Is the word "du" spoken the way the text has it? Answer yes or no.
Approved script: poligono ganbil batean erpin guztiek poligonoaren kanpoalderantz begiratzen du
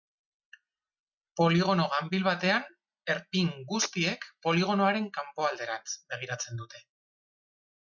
no